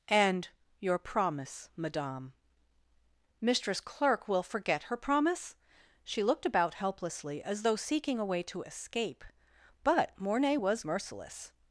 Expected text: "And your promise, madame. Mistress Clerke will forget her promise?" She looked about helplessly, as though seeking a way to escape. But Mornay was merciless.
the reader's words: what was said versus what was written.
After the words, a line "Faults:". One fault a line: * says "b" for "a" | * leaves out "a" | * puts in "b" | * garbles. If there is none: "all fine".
"And your promise, madame. Mistress Clerke will forget her promise?" She looked about helplessly, as though seeking a way to escape. But Mornay was merciless.
Faults:
all fine